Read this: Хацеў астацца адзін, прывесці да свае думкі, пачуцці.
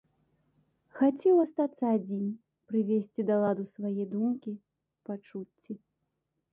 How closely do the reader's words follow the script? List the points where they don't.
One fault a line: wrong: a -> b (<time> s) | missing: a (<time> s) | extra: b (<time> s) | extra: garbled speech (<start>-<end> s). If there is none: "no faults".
extra: ладу (3.5 s)